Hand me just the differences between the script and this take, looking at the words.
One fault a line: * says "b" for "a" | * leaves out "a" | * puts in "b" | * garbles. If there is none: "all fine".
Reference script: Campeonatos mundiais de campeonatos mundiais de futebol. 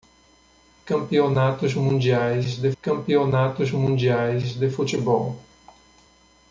all fine